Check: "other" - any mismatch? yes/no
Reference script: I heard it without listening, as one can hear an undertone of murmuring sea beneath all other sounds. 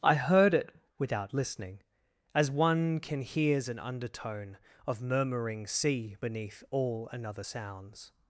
yes